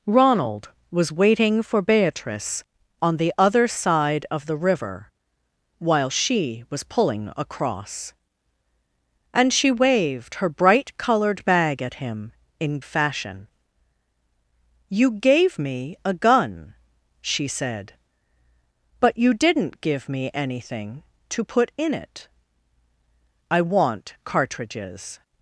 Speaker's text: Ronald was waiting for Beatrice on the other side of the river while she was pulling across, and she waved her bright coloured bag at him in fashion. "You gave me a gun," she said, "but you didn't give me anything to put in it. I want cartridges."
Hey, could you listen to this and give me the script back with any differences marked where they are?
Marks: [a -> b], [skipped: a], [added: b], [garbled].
Ronald was waiting for Beatrice on the other side of the river while she was pulling across, and she waved her bright coloured bag at him in fashion. "You gave me a gun," she said, "but you didn't give me anything to put in it. I want cartridges."